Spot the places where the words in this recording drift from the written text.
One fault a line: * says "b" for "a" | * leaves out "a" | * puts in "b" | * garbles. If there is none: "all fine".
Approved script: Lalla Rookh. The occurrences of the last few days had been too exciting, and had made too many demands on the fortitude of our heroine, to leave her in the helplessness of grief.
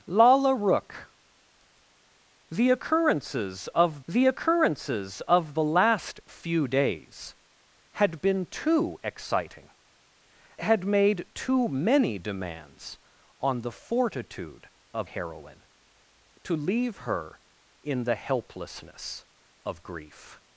* puts in "occurrences of the"
* leaves out "and"
* leaves out "our"